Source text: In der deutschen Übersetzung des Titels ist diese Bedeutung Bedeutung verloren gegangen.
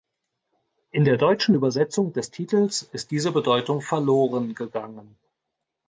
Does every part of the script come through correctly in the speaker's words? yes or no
no